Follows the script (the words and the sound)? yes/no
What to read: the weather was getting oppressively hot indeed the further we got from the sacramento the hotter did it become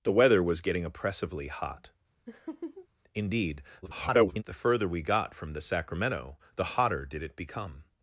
no